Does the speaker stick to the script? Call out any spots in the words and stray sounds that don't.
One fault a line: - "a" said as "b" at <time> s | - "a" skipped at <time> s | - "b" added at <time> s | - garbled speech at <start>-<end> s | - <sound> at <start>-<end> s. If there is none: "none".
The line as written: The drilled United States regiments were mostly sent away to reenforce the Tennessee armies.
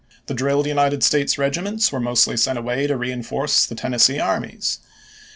none